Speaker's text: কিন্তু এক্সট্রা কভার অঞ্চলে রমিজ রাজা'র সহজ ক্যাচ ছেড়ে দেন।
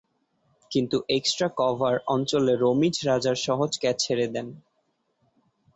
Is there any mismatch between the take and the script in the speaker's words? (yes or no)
no